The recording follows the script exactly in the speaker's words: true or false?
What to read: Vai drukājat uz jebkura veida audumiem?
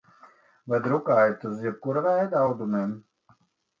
true